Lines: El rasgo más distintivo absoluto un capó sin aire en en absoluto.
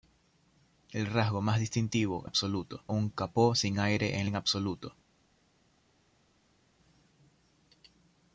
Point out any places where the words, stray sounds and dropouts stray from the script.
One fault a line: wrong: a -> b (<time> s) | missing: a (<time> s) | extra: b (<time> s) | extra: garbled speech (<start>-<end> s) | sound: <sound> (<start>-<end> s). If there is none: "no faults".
no faults